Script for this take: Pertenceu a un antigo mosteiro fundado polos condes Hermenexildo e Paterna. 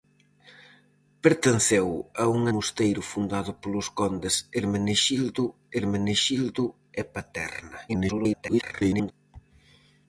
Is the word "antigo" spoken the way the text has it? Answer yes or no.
no